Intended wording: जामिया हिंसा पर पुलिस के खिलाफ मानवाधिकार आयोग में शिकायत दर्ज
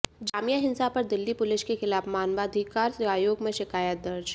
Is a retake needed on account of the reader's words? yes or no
yes